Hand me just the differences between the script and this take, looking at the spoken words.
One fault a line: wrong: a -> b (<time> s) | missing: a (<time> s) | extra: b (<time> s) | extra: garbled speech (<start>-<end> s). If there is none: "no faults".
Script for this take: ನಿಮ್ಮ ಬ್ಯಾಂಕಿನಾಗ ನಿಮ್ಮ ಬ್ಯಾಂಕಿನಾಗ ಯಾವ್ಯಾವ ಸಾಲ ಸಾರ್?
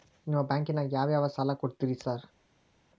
missing: ನಿಮ್ಮ ಬ್ಯಾಂಕಿನಾಗ (0.9 s)
extra: ಕೊಡ್ತೇರಿ (1.5 s)